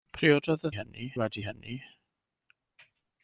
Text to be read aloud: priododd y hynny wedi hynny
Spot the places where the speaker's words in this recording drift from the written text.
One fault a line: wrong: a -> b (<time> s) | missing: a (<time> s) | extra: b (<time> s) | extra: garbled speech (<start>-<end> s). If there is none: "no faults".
no faults